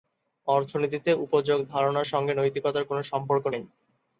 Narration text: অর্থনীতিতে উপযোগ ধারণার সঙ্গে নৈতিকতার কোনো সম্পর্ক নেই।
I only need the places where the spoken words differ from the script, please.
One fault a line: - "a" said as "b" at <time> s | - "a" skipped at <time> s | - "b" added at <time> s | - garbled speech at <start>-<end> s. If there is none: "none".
none